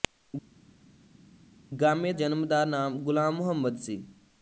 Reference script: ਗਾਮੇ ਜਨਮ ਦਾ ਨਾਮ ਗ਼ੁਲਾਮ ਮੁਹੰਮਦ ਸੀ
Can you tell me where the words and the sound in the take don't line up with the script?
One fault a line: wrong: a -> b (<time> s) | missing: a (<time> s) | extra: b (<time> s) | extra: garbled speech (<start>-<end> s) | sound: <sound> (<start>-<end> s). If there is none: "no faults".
no faults